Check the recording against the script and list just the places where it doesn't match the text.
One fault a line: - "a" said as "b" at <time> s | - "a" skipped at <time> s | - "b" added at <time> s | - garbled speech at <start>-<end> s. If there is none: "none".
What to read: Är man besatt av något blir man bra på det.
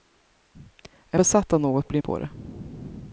- "man" skipped at 1.2 s
- "man bra" skipped at 2.0 s